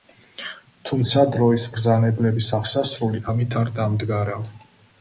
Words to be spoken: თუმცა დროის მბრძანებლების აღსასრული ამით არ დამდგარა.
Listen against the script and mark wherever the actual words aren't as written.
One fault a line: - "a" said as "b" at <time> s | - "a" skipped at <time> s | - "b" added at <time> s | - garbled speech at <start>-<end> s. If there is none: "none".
none